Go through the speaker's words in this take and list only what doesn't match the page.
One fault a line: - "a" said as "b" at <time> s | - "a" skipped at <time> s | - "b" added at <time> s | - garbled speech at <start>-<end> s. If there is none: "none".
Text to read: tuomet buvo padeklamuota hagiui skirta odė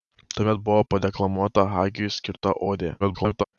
- garbled speech at 3.0-3.4 s